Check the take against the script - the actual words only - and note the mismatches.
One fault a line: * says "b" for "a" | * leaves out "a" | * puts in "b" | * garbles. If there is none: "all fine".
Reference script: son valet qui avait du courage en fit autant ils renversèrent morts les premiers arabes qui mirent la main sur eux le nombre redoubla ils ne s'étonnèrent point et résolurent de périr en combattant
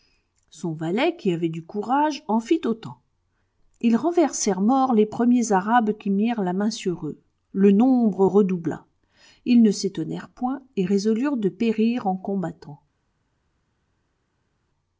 all fine